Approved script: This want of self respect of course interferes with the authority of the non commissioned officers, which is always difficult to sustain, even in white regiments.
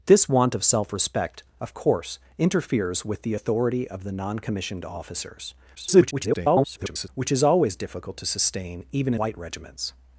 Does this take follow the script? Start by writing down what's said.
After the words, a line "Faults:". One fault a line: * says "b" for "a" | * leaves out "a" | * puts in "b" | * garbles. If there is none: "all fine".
This want of self respect of course interferes with the authority of the non commissioned officers, [garbled] which is always difficult to sustain, even white regiments.
Faults:
* garbles
* leaves out "in"